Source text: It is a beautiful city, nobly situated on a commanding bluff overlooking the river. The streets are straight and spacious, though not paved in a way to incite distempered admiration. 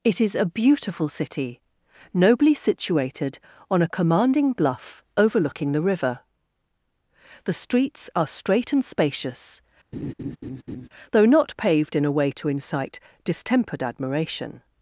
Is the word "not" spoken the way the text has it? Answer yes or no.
yes